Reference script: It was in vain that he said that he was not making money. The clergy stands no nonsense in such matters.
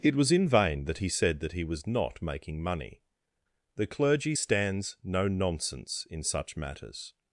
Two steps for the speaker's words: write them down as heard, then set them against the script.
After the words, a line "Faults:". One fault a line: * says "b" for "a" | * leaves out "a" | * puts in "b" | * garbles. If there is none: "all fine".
It was in vain that he said that he was not making money. The clergy stands no nonsense in such matters.
Faults:
all fine